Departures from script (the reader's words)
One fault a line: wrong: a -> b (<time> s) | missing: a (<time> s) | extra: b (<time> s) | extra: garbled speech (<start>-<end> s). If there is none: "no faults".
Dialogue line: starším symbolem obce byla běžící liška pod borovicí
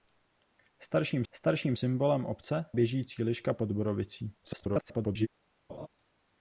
extra: starším (1.3 s)
missing: byla (2.7 s)
extra: garbled speech (4.4-5.3 s)